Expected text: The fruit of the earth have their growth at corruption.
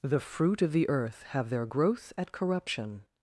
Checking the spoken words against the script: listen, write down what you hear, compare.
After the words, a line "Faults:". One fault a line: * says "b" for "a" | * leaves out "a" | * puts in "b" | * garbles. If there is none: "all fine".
The fruit of the earth have their growth at corruption.
Faults:
all fine